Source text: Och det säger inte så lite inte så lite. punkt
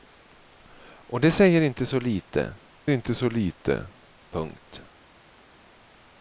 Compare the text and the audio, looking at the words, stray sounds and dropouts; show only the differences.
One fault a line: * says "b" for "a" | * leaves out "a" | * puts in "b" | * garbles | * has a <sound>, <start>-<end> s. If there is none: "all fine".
all fine